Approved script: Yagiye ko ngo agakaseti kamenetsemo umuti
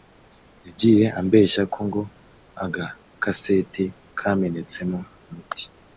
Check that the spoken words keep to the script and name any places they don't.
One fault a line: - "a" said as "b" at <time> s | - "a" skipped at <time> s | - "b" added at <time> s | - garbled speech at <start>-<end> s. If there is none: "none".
- "ambeshya" added at 1.2 s